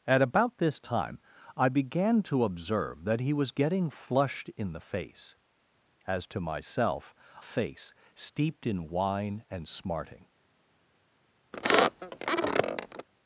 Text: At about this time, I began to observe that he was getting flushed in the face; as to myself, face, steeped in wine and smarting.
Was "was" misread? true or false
false